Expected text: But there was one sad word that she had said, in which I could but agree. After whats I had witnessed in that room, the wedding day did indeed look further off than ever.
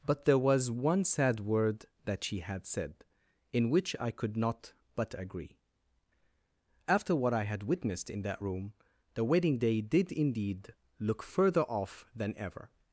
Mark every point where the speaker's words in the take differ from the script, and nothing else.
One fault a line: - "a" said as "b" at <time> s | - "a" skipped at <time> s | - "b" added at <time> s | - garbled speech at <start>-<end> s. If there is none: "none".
- "not" added at 4.3 s
- "whats" said as "what" at 7.2 s